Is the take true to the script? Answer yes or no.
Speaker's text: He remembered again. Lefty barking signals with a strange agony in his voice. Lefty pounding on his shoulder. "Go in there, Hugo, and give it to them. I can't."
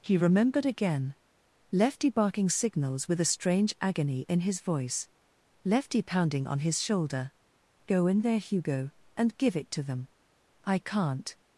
yes